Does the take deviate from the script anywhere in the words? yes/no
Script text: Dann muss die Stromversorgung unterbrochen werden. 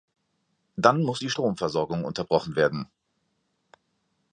no